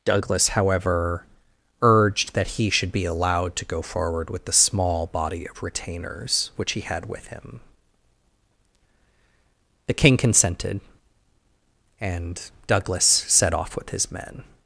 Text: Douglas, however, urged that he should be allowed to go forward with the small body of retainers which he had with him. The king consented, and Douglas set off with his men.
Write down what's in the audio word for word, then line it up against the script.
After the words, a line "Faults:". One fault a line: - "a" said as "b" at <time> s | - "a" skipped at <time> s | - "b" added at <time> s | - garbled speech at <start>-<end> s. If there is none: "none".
Douglas, however, urged that he should be allowed to go forward with the small body of retainers which he had with him. The king consented, and Douglas set off with his men.
Faults:
none